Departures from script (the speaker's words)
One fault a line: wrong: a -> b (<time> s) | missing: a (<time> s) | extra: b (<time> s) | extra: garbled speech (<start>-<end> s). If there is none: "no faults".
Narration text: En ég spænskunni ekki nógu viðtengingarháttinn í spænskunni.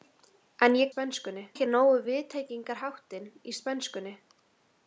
no faults